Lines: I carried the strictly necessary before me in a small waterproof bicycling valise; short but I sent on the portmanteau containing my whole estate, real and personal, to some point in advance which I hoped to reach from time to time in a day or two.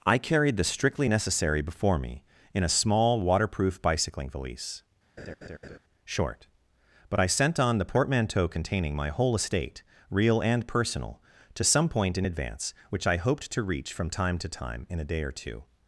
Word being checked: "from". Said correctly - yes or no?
yes